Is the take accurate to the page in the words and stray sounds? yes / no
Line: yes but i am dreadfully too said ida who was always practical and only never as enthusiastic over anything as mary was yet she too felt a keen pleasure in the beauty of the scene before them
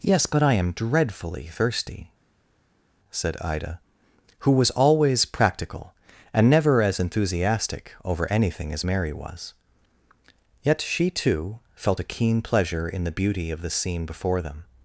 no